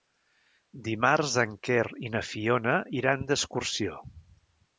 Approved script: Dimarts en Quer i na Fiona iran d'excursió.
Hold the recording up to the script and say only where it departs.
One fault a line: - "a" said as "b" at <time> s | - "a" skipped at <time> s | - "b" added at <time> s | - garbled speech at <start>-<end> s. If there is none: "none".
none